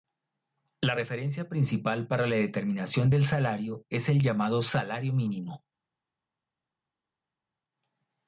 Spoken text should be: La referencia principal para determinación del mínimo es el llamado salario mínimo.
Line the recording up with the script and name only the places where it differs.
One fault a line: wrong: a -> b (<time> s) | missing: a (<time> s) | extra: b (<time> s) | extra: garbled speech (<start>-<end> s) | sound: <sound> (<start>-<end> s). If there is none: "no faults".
extra: la (2.2 s)
wrong: mínimo -> salario (3.2 s)